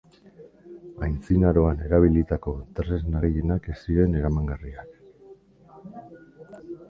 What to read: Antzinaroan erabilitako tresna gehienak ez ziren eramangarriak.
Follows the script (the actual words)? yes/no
yes